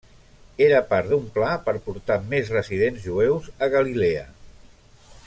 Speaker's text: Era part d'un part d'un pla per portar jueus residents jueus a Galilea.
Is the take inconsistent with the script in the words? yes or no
yes